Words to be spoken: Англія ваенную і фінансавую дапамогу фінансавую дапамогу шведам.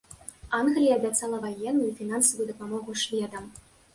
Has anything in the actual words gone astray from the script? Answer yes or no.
yes